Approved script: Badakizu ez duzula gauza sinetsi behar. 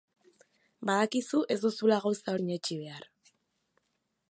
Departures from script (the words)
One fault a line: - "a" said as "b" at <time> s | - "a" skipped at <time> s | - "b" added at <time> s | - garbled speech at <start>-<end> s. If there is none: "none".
none